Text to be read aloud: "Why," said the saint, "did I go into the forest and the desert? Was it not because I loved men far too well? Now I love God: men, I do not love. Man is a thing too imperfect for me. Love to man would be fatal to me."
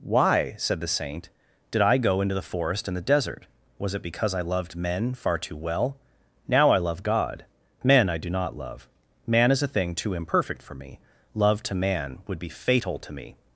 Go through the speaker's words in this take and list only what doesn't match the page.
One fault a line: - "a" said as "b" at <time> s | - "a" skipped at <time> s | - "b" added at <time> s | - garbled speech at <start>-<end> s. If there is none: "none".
- "not" skipped at 4.0 s